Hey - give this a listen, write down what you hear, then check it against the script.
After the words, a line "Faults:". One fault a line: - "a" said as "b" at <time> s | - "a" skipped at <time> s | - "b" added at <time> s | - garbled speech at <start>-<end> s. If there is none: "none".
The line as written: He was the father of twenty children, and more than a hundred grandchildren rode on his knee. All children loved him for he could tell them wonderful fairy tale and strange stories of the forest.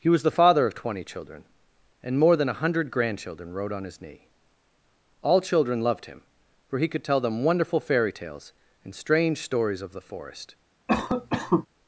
He was the father of twenty children, and more than a hundred grandchildren rode on his knee. All children loved him for he could tell them wonderful fairy tales and strange stories of the forest.
Faults:
- "tale" said as "tales" at 8.1 s